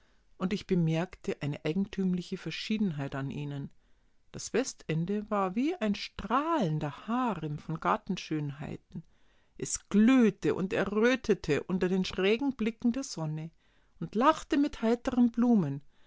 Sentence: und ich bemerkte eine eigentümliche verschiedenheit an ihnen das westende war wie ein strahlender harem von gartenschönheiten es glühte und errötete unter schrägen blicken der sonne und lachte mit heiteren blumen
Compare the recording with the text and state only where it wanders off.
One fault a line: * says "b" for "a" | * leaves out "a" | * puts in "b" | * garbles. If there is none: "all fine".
* puts in "den"